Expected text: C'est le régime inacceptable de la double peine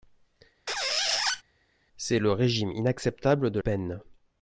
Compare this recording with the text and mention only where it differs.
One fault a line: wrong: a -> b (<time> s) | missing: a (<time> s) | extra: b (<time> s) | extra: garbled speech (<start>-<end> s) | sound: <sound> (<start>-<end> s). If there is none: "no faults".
sound: squeak (0.7-1.4 s)
missing: la double (3.6 s)